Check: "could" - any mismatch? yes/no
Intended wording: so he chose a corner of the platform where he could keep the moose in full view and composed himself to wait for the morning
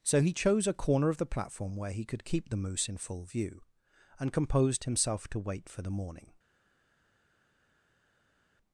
no